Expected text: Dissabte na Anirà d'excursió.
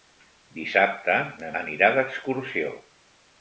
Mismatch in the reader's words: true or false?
false